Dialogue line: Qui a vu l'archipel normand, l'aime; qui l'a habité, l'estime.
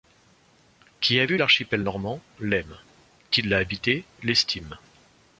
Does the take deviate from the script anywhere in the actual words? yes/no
no